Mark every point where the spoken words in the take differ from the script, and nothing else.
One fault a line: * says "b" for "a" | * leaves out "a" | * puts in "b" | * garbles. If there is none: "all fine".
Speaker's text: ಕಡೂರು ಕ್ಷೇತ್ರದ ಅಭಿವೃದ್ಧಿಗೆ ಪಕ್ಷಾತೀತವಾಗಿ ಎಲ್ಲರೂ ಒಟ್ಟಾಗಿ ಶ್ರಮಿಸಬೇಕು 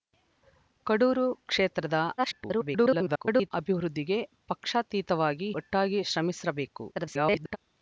* garbles
* leaves out "ಎಲ್ಲರೂ"
* garbles